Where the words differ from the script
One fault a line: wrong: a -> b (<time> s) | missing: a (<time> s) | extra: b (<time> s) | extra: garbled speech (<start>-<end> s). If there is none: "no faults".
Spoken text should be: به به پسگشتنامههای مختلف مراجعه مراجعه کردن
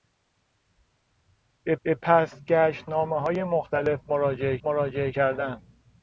no faults